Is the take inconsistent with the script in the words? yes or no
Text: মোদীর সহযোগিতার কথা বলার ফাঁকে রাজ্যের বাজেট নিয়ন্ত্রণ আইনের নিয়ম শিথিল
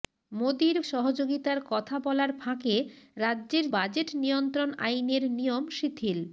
no